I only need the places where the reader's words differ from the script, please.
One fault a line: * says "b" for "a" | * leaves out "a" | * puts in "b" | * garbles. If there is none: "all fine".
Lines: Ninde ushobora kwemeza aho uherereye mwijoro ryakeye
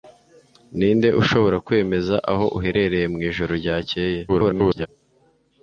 * garbles